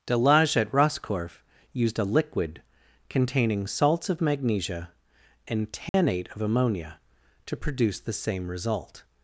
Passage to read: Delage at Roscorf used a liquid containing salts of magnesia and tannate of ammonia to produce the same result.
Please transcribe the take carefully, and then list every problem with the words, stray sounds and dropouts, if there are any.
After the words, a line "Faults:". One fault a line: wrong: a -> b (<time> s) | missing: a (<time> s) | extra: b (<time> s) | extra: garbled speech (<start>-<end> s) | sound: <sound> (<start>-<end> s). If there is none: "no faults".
Delage at Roscorf used a liquid containing salts of magnesia and tannate of ammonia to produce the same result.
Faults:
sound: dropout (5.9-5.9 s)